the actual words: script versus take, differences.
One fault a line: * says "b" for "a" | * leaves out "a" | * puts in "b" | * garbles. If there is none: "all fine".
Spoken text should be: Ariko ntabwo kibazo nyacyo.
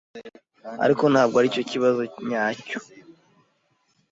* puts in "aricyo"